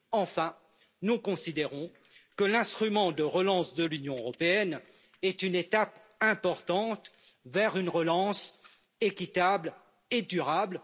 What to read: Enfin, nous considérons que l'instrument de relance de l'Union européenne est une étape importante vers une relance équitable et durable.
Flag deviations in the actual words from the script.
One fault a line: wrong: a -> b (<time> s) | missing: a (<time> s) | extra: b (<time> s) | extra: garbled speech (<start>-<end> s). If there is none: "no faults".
no faults